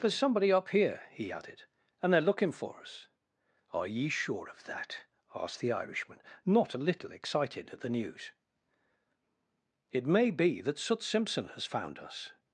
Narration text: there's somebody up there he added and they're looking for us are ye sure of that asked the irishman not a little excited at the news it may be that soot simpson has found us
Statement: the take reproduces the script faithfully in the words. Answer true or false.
false